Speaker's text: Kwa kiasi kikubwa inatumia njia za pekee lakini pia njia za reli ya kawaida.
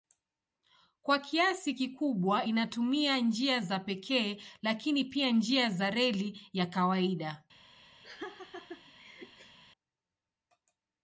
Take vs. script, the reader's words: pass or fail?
pass